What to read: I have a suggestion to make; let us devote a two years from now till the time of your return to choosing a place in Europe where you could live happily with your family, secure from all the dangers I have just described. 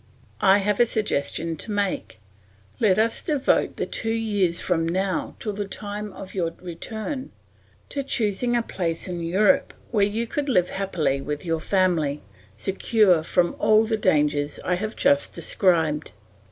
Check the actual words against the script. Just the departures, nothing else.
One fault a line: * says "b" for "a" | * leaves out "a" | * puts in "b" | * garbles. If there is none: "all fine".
* says "the" for "a"